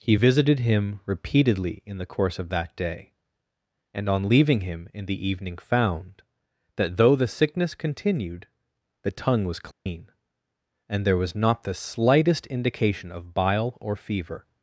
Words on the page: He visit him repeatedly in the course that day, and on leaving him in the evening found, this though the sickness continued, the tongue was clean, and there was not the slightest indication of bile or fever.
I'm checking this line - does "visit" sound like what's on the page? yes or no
no